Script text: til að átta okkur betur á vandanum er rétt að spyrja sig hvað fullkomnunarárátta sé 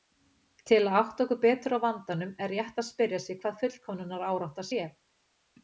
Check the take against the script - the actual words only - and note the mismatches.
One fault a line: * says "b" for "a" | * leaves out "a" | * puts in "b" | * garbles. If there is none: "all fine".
all fine